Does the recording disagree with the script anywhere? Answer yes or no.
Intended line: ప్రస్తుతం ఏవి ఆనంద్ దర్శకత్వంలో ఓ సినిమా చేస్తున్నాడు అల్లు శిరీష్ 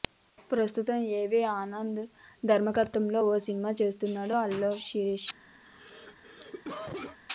no